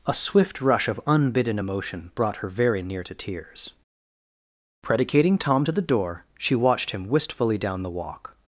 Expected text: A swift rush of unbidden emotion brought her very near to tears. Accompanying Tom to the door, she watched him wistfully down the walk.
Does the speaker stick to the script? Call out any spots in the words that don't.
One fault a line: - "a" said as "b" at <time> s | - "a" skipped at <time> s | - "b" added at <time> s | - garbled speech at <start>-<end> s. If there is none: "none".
- "Accompanying" said as "Predicating" at 4.8 s